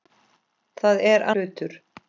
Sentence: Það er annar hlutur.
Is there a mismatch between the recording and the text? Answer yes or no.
yes